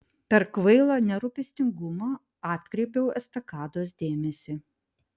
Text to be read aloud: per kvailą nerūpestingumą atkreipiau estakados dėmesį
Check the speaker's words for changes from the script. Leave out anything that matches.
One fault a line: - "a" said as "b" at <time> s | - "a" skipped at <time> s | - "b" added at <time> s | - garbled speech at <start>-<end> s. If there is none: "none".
none